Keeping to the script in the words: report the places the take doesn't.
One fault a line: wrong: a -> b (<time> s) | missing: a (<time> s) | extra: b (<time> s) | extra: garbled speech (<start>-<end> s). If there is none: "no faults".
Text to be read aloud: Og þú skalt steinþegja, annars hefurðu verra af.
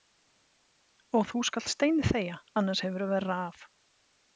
no faults